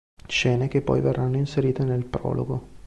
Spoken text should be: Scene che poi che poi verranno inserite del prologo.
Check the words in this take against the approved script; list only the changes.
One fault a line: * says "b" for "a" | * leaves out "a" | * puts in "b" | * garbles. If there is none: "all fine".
* leaves out "che poi"
* says "nel" for "del"